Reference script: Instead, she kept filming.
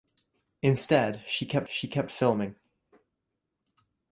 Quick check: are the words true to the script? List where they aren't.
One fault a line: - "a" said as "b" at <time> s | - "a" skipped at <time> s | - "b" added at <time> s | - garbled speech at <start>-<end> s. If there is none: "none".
- "she kept" added at 1.7 s